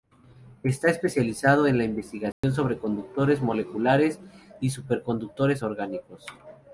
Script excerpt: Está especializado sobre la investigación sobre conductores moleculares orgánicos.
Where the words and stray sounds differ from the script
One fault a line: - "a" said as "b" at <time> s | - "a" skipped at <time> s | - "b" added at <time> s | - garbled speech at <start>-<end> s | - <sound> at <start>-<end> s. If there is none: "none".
- "sobre" said as "en" at 1.7 s
- dropout at 2.3-2.4 s
- "y superconductores" added at 4.6 s